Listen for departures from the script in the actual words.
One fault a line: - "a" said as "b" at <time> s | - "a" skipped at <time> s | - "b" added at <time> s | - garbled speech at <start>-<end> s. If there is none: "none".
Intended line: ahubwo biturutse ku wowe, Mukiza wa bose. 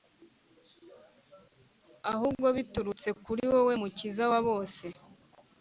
- "ku" said as "kuri" at 3.2 s